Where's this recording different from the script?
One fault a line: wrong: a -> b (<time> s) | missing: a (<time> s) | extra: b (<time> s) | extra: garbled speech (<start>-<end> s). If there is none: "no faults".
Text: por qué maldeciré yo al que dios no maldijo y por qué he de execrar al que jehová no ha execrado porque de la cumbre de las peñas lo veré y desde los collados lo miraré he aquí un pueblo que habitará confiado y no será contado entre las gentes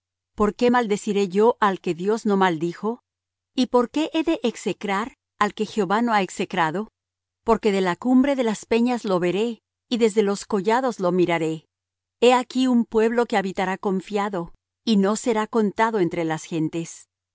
no faults